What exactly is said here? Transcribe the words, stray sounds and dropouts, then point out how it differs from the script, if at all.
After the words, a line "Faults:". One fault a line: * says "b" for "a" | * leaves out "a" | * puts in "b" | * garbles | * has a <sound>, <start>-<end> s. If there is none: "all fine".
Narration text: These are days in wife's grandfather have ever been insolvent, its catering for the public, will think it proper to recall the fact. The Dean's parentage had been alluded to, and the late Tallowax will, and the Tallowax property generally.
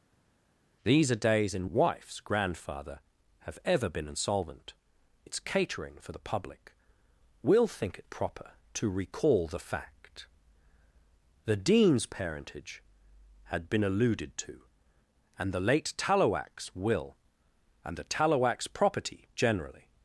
These are days in wife's grandfather have ever been insolvent, its catering for the public, will think it proper to recall the fact. The Dean's parentage had been alluded to, and the late Tallowax will, and the Tallowax property generally.
Faults:
all fine